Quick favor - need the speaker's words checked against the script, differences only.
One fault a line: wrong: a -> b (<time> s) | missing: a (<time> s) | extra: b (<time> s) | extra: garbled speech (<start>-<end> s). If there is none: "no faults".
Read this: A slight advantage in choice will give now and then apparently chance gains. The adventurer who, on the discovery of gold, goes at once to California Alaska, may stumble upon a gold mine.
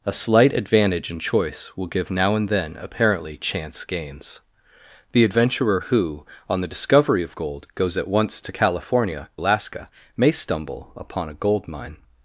no faults